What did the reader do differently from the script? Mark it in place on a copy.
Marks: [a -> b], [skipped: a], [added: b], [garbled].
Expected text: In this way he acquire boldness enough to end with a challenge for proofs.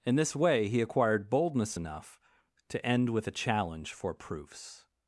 In this way he [acquire -> acquired] boldness enough to end with a challenge for proofs.